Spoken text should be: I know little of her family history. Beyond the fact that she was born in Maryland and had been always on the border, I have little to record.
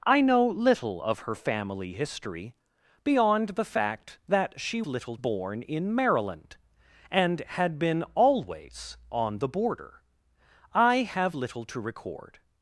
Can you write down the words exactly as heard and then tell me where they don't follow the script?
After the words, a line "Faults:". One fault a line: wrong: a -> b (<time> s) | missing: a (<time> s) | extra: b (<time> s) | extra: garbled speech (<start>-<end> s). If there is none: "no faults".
I know little of her family history. Beyond the fact that she little born in Maryland and had been always on the border, I have little to record.
Faults:
wrong: was -> little (4.9 s)